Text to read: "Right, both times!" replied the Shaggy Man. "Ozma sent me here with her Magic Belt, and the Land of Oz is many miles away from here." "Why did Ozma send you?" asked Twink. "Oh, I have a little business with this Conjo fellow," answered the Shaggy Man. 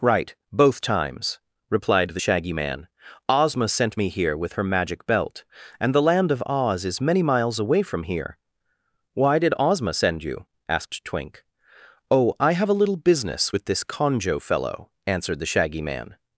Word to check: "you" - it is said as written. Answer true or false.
true